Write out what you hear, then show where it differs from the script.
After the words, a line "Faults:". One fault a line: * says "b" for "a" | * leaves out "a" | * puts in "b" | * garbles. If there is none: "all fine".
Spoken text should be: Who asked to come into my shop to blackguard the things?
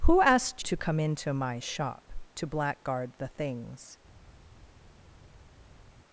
Who asked to come into my shop to blackguard the things?
Faults:
all fine